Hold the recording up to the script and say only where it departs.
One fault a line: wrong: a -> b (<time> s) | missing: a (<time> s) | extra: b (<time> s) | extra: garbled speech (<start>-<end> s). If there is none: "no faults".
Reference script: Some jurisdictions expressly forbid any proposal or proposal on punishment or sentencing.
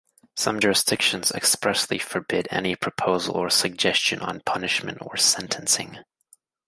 wrong: proposal -> suggestion (3.5 s)